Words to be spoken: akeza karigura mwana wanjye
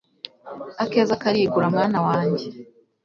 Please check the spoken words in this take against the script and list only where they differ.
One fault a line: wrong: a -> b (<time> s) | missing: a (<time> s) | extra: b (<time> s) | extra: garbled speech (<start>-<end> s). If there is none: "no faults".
no faults